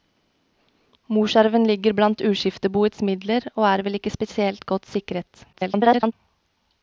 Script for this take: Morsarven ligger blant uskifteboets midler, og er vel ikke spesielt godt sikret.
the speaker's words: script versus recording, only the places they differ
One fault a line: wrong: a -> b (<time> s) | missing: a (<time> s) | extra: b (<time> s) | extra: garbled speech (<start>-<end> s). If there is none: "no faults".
extra: garbled speech (5.5-6.1 s)